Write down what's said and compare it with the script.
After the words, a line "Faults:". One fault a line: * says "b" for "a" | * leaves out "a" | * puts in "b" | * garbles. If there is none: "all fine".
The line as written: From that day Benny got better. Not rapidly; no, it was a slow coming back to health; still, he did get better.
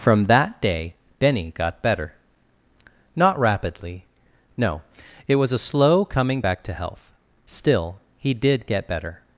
From that day Benny got better. Not rapidly; no, it was a slow coming back to health; still, he did get better.
Faults:
all fine